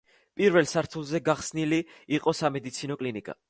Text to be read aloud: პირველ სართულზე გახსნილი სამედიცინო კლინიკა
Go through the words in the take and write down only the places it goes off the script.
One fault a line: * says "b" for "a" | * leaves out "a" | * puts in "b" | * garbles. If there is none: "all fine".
* puts in "იყო"